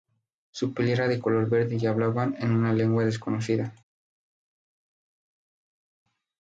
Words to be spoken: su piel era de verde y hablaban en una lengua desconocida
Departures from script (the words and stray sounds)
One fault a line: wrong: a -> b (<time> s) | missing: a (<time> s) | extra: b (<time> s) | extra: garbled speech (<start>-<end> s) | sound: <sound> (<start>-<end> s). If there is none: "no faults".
extra: color (1.2 s)